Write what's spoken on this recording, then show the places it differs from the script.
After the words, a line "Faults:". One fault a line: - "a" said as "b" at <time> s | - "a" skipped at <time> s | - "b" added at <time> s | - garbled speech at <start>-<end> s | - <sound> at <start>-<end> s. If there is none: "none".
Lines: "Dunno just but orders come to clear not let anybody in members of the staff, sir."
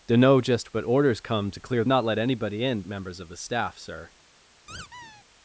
"Dunno just but orders come to clear not let anybody in members of the staff, sir."
Faults:
- squeak at 4.7-5.2 s